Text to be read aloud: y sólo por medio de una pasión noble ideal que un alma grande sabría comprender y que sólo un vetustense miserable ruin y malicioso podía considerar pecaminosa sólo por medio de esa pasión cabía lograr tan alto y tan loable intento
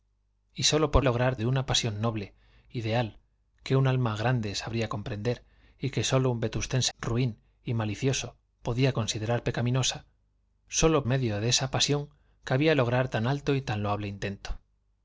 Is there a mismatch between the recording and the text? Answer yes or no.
yes